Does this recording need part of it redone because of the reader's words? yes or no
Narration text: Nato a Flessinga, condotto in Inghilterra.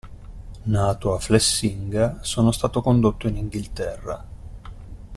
yes